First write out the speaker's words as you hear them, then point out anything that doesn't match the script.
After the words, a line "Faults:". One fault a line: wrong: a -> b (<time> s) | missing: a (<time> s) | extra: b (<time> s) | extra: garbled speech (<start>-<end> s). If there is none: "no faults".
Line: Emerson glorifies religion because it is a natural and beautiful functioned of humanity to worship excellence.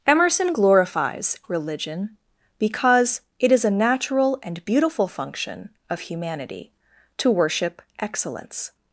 Emerson glorifies religion because it is a natural and beautiful function of humanity to worship excellence.
Faults:
wrong: functioned -> function (5.1 s)